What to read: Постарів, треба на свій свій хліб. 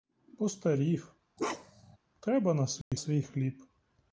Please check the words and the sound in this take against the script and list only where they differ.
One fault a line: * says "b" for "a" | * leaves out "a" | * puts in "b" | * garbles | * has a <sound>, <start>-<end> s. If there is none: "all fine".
* has a bark, 1.4-2.0 s
* has a dropout, 2.8-2.9 s